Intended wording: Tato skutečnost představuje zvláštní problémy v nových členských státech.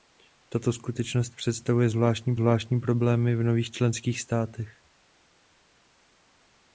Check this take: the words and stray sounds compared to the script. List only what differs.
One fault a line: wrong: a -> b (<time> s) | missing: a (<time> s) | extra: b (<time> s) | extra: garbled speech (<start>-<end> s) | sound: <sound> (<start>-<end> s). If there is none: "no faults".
extra: zvláštní (2.3 s)